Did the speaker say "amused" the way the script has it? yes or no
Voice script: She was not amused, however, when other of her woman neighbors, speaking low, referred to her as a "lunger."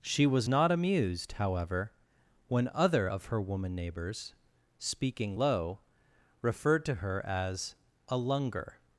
yes